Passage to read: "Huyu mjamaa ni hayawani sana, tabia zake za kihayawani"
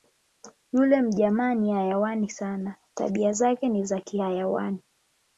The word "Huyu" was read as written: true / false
false